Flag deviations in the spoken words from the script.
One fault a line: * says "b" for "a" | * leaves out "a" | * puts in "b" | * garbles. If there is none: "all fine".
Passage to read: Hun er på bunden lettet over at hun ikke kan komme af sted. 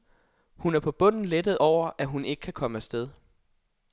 all fine